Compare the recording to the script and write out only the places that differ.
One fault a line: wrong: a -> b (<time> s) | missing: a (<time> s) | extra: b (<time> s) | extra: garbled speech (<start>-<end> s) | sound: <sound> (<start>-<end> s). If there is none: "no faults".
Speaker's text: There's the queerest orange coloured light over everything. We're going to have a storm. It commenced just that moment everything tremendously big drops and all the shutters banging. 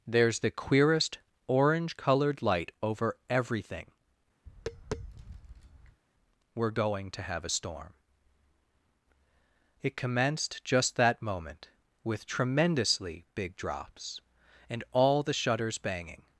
sound: tap (4.5-6.0 s)
wrong: everything -> with (12.0 s)